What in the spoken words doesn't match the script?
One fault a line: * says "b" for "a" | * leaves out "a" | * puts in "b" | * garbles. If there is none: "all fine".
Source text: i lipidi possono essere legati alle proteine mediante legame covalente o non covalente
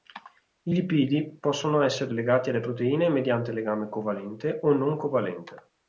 all fine